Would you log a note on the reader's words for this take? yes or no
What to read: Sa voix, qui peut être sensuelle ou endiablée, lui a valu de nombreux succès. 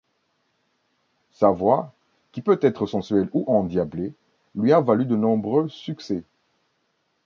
no